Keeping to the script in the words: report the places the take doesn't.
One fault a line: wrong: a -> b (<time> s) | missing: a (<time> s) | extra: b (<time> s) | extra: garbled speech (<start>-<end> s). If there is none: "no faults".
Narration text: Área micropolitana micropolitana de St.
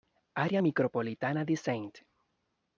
missing: micropolitana (1.4 s)